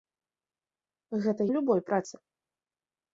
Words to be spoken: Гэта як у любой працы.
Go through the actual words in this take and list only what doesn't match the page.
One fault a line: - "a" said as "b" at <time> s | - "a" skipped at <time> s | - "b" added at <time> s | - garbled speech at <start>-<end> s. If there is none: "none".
- "як" skipped at 1.5 s